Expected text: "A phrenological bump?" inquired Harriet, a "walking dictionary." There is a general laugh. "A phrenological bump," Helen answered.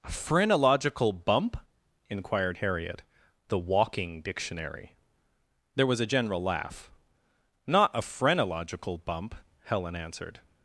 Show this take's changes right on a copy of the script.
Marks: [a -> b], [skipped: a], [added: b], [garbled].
"A phrenological bump?" inquired Harriet, [a -> the] "walking dictionary." There [is -> was] a general laugh. [added: Not] "A phrenological bump," Helen answered.